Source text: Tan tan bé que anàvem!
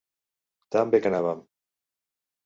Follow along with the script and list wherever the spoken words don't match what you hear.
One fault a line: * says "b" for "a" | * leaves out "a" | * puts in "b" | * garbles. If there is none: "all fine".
* leaves out "tan"